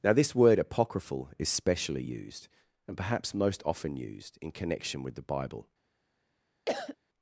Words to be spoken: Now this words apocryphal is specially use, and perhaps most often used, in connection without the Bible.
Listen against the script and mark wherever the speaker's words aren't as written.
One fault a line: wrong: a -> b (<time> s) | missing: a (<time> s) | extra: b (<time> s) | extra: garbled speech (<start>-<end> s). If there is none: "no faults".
wrong: words -> word (0.3 s)
wrong: use -> used (2.0 s)
wrong: without -> with (5.0 s)